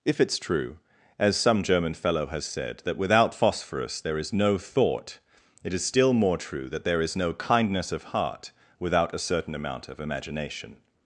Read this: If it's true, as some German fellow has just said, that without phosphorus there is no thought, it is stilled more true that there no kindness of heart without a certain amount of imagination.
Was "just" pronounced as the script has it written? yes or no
no